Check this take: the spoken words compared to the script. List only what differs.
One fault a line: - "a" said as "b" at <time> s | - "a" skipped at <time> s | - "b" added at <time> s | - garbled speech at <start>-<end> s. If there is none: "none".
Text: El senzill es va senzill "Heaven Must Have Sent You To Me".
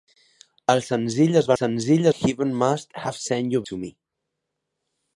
none